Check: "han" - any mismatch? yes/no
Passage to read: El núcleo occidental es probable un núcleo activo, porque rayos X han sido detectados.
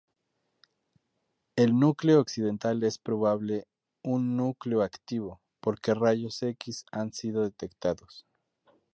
no